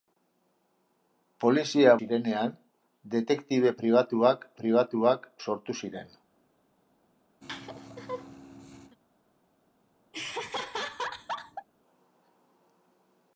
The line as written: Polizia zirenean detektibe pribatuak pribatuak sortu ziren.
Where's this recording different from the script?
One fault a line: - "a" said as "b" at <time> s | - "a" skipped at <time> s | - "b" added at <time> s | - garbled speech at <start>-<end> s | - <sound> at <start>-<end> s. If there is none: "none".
- laugh at 7.4-9.0 s
- laugh at 10.1-11.7 s